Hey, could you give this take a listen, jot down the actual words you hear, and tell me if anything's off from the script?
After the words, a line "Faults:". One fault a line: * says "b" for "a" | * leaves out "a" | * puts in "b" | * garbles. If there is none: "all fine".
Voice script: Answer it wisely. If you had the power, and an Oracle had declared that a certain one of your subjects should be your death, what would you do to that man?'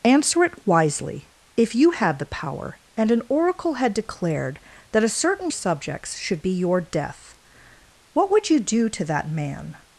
Answer it wisely. If you had the power, and an Oracle had declared that a certain subjects should be your death, what would you do to that man?'
Faults:
* leaves out "one of your"